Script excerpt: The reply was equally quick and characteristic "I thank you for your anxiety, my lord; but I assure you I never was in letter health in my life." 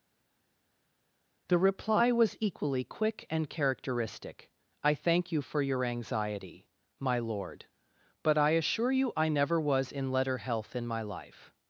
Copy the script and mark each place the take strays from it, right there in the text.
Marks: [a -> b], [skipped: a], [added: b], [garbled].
The reply was equally quick and characteristic "I thank you for your anxiety, my lord; but I assure you I never was in letter health in my life."